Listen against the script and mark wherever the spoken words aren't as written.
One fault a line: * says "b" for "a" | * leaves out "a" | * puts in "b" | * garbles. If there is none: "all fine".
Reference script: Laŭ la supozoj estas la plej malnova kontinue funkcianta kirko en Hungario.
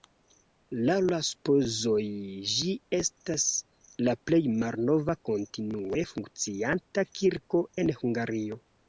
* puts in "ĝi"